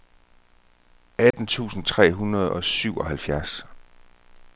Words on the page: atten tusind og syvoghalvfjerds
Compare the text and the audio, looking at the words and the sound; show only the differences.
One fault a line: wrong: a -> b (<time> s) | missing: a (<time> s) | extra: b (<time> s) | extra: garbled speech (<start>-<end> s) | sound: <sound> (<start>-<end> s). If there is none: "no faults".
sound: dropout (1.3-1.3 s)
extra: tre hundrede (1.9 s)